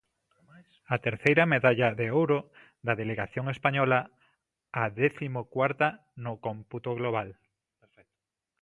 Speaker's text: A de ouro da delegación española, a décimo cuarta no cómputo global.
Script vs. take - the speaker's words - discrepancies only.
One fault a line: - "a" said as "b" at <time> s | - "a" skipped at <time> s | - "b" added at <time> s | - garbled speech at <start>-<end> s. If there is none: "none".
- "terceira medalla" added at 1.1 s